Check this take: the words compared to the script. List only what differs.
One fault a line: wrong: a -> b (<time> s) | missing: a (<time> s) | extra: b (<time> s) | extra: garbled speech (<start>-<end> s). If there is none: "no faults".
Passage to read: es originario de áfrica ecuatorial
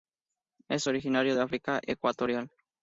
no faults